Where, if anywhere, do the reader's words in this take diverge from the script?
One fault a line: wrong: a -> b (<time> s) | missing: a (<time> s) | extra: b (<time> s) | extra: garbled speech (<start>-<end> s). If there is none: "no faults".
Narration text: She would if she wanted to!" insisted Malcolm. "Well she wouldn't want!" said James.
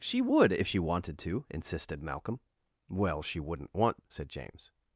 no faults